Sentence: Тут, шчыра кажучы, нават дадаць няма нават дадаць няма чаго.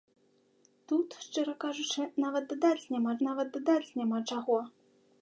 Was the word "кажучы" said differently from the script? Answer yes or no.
no